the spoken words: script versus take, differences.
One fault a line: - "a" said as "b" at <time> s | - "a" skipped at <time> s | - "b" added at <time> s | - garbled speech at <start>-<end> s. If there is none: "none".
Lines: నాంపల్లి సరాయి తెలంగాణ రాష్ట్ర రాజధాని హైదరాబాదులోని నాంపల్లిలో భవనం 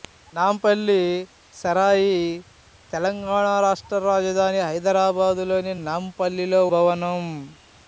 none